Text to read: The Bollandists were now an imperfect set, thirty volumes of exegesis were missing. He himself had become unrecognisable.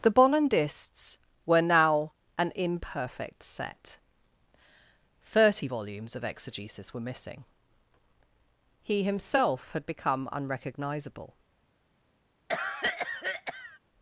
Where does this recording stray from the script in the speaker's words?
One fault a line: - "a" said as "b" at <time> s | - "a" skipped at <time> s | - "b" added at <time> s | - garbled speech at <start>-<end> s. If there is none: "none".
none